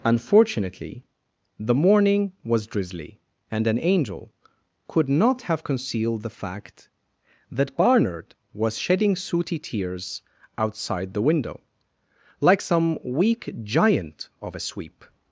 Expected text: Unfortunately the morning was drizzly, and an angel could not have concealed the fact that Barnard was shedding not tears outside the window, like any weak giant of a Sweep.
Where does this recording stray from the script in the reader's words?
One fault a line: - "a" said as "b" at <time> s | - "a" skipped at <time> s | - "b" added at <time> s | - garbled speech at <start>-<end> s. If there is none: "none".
- "not" said as "sooty" at 9.1 s
- "any" said as "some" at 12.6 s